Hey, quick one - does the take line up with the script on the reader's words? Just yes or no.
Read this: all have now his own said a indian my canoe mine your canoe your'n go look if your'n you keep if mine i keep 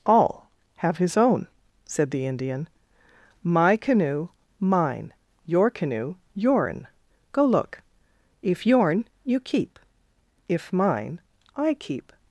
no